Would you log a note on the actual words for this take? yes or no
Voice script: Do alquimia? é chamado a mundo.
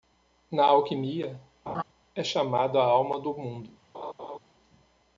yes